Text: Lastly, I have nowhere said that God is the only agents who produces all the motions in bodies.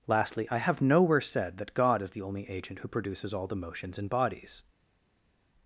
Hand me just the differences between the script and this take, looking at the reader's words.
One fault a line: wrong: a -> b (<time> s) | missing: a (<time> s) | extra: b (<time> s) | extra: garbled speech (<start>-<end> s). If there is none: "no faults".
wrong: agents -> agent (2.5 s)